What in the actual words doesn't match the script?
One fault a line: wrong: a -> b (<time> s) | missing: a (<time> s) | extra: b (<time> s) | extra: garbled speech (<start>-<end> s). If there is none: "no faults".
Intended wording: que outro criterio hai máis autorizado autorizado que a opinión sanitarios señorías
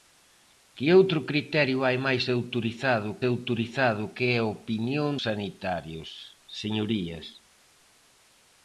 no faults